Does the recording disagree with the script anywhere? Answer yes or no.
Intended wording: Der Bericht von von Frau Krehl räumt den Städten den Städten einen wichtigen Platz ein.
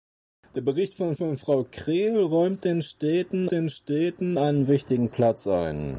no